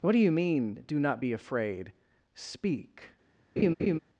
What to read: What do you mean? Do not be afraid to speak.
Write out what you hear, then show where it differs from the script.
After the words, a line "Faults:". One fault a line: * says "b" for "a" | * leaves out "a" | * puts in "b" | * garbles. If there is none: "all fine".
What do you mean? Do not be afraid speak.
Faults:
* leaves out "to"